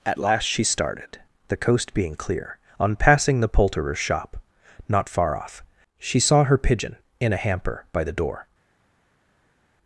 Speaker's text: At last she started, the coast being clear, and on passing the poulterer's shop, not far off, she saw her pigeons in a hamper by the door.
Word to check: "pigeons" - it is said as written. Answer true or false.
false